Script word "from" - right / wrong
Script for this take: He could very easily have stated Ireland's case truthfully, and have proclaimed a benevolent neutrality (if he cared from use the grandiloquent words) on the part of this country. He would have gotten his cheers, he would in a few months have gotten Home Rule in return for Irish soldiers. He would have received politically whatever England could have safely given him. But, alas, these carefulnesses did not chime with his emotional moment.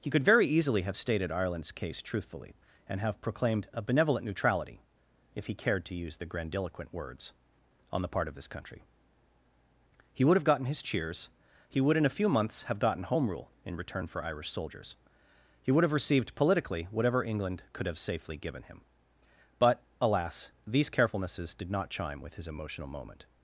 wrong